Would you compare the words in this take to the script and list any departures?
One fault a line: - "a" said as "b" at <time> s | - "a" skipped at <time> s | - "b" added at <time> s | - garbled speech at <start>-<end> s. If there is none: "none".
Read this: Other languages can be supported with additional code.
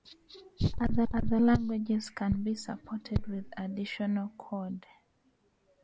- "other" added at 1.1 s